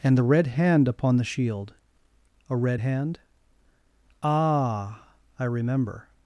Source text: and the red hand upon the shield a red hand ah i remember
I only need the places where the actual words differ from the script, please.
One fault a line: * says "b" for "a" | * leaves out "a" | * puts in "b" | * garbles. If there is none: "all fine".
all fine